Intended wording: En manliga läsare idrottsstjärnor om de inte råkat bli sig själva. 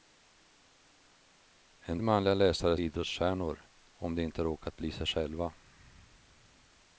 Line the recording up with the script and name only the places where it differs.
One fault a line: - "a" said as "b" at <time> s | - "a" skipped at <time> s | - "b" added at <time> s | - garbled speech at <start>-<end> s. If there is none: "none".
none